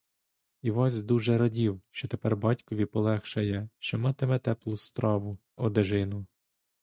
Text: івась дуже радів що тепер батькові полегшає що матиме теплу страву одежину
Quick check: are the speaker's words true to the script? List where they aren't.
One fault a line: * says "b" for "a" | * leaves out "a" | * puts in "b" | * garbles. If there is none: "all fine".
all fine